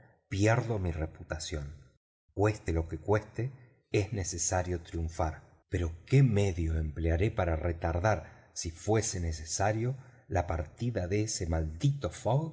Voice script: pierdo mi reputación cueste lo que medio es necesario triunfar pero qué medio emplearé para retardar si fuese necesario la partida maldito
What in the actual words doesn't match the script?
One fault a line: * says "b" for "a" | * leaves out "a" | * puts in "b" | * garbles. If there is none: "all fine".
* says "cueste" for "medio"
* puts in "de ese"